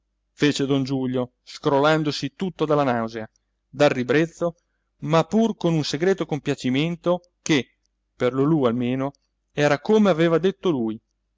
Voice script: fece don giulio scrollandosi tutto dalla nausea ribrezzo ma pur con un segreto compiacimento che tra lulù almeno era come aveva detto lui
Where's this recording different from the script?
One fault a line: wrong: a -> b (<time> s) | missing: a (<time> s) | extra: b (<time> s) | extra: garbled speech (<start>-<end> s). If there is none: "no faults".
extra: dal (3.7 s)
wrong: tra -> per (8.2 s)